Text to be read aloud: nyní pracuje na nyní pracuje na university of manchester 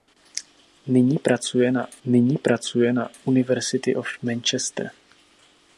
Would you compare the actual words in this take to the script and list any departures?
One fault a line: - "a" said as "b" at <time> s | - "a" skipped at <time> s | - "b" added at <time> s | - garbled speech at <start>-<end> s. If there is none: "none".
none